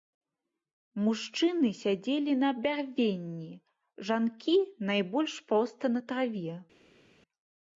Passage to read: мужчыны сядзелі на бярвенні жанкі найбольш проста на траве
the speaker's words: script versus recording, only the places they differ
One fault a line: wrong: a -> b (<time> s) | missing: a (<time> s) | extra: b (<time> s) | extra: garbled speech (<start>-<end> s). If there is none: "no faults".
no faults